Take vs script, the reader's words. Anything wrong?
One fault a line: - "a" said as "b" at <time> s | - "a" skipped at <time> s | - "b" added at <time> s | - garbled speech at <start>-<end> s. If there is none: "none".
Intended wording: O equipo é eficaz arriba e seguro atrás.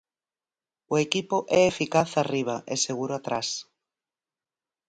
none